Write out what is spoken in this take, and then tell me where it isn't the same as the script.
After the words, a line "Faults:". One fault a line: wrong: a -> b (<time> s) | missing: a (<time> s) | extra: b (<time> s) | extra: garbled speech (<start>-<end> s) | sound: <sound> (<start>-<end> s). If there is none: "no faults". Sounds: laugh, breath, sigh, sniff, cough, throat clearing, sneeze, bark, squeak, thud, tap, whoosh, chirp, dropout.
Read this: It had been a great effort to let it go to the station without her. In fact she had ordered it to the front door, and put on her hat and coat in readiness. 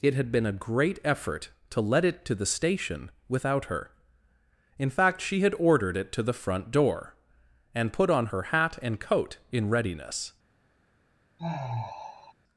It had been a great effort to let it to the station without her. In fact she had ordered it to the front door, and put on her hat and coat in readiness.
Faults:
missing: go (2.2 s)
sound: sigh (11.4-12.3 s)